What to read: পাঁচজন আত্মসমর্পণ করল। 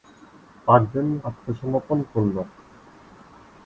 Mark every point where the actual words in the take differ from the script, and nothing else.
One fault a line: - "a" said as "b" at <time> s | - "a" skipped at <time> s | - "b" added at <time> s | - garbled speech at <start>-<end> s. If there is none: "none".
none